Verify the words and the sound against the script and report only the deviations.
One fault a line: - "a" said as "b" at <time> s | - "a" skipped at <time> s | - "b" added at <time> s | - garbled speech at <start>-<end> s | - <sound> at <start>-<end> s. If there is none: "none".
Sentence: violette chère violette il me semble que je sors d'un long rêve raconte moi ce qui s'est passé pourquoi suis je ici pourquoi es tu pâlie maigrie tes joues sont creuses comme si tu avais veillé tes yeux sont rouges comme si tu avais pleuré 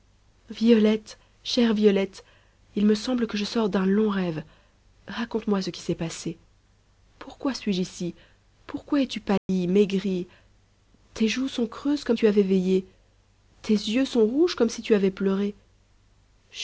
- dropout at 9.4-9.5 s
- "si" skipped at 12.2 s